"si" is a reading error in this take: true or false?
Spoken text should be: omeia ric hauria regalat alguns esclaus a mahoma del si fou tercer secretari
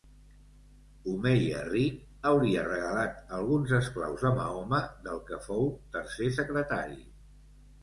true